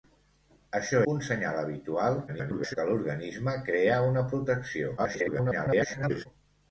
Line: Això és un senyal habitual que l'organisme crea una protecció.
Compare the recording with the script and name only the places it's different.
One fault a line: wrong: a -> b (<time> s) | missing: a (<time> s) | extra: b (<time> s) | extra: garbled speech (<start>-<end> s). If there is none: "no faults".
missing: és (1.0 s)
extra: garbled speech (2.3-2.8 s)
extra: garbled speech (5.0-6.3 s)